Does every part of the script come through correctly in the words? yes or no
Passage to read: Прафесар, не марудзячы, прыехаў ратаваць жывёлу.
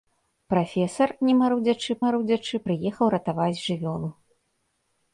no